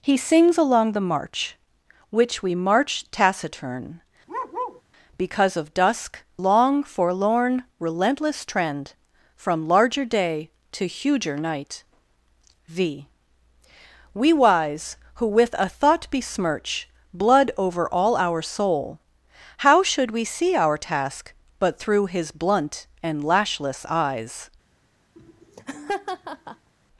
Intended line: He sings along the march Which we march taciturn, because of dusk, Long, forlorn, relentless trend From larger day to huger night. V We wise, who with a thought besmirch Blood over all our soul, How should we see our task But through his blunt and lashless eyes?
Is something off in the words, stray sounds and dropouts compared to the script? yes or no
yes